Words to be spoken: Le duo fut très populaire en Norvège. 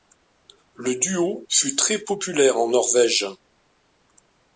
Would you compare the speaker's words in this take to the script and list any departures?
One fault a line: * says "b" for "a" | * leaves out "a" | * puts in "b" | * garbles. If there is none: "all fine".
all fine